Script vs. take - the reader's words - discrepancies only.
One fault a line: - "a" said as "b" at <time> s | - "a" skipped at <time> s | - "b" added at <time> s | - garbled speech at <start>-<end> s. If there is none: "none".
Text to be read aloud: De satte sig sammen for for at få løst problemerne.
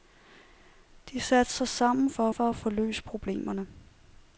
none